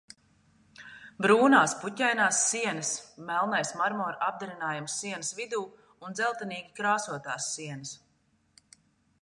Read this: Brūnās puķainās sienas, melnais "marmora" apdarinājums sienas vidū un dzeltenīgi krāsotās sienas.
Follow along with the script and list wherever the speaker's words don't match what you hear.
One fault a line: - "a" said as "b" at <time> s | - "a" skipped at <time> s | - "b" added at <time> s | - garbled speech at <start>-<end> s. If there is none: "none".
none